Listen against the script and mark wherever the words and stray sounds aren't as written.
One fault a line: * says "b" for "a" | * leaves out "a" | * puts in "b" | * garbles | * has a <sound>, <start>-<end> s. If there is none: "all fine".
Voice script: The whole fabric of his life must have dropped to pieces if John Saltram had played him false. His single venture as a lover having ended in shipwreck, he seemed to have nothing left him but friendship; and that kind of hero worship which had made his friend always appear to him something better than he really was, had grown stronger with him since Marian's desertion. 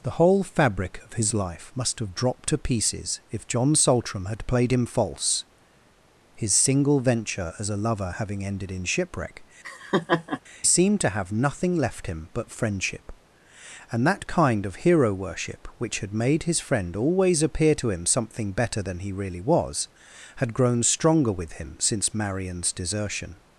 * leaves out "he"
* has a laugh, 9.6-10.4 s